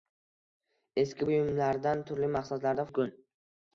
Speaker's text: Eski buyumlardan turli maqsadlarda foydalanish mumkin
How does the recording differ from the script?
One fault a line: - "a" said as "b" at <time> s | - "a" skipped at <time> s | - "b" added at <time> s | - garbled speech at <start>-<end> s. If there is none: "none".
- "foydalanish" skipped at 2.9 s